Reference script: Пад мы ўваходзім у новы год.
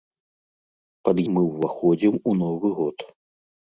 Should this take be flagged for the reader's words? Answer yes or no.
no